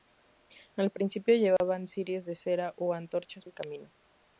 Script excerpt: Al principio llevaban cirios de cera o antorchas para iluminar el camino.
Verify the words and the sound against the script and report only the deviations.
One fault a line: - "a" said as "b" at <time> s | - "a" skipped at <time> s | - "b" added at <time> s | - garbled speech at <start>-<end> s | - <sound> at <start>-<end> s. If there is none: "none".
- dropout at 1.6-1.6 s
- "para iluminar" skipped at 3.5 s